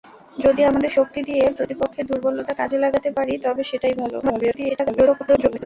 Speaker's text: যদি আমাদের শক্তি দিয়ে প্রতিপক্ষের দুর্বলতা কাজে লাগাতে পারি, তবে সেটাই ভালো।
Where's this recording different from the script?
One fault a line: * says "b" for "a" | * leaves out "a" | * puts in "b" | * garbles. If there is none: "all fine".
* garbles